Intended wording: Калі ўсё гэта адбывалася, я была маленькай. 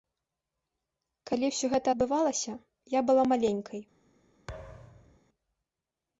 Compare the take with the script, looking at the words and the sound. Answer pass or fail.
fail